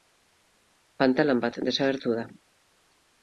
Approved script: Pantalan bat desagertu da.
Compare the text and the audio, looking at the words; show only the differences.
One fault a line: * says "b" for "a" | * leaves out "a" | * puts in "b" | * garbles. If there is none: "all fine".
all fine